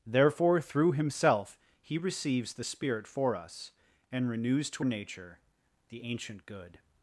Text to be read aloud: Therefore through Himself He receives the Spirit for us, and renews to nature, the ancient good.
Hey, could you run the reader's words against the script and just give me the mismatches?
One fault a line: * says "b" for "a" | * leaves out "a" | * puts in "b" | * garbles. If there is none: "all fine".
all fine